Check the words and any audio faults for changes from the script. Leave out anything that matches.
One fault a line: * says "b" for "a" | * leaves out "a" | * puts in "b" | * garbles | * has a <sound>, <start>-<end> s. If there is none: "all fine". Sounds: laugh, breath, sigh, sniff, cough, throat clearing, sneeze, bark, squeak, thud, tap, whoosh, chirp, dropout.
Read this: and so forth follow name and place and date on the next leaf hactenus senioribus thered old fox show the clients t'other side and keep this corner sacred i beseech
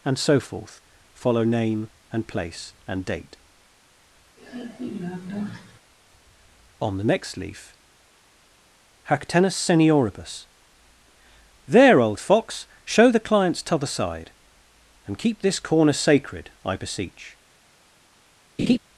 * has a sigh, 4.4-5.8 s
* says "there" for "thered"
* has a laugh, 18.6-18.8 s